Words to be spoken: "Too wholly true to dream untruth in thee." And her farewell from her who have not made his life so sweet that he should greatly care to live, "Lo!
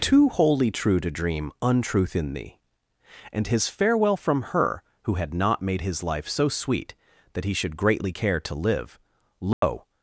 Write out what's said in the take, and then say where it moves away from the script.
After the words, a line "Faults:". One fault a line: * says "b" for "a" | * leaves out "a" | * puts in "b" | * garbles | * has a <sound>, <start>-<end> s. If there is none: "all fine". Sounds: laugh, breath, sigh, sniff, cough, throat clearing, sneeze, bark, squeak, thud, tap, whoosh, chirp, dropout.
"Too wholly true to dream untruth in thee." And his farewell from her who had not made his life so sweet that he should greatly care to live, "Lo!
Faults:
* says "his" for "her"
* says "had" for "have"
* has a dropout, 9.5-9.6 s